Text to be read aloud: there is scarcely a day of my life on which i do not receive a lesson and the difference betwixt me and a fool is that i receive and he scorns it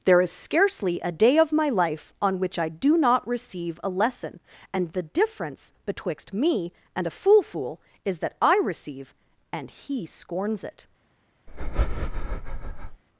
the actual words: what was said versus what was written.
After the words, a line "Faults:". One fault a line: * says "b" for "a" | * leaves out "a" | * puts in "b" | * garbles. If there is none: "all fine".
there is scarcely a day of my life on which i do not receive a lesson and the difference betwixt me and a fool fool is that i receive and he scorns it
Faults:
* puts in "fool"